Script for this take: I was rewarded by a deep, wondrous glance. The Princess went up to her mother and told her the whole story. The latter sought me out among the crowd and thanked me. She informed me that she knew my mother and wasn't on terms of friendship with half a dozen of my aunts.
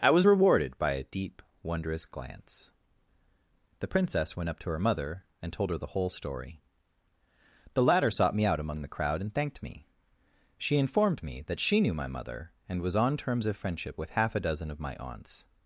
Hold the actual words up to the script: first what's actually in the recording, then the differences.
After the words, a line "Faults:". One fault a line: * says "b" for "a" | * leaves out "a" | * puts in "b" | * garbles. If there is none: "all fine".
I was rewarded by a deep, wondrous glance. The Princess went up to her mother and told her the whole story. The latter sought me out among the crowd and thanked me. She informed me that she knew my mother and was on terms of friendship with half a dozen of my aunts.
Faults:
* says "was" for "wasn't"